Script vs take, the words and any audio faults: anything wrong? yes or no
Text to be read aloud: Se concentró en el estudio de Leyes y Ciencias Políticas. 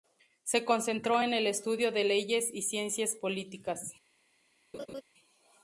yes